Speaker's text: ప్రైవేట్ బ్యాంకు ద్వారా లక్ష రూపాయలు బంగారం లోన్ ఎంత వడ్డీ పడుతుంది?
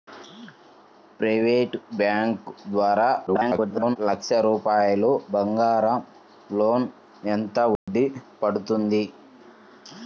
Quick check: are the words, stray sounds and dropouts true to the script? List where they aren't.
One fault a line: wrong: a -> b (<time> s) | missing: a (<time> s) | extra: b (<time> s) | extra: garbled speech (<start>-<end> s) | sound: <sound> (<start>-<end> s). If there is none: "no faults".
extra: garbled speech (3.3-4.0 s)
sound: dropout (7.8-7.9 s)